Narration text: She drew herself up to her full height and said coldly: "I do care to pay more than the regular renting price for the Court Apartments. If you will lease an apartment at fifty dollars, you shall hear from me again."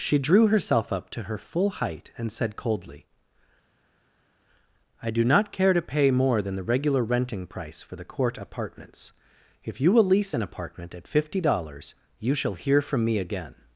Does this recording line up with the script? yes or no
no